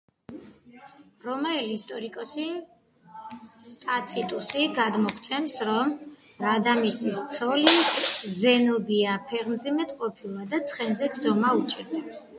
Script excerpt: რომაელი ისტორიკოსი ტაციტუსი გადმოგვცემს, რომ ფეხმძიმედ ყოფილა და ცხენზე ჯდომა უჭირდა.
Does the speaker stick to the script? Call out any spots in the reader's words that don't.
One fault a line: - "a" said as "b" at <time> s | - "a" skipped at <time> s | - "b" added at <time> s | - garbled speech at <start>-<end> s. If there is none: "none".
- "რადამისტის ცოლი ზენობია" added at 6.5 s